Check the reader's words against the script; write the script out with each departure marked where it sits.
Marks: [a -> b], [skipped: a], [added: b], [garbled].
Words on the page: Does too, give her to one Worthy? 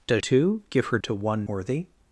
Does too, give her to one Worthy?